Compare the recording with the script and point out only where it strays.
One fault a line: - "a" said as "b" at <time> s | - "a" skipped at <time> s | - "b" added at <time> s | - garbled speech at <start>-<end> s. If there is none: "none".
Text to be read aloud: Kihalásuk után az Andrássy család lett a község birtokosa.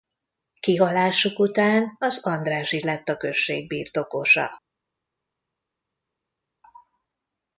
- "család" skipped at 2.8 s